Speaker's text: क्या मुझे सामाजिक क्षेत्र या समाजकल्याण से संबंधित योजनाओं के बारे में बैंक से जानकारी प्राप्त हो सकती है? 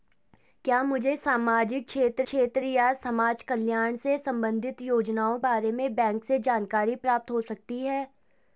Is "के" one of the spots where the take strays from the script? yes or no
yes